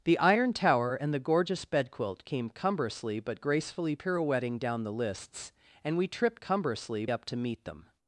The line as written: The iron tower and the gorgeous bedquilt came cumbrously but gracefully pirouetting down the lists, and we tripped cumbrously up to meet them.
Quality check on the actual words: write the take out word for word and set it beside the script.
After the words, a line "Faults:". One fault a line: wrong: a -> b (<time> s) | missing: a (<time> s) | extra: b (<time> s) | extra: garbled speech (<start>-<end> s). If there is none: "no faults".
The iron tower and the gorgeous bedquilt came cumbrously but gracefully pirouetting down the lists, and we tripped cumbrously up to meet them.
Faults:
no faults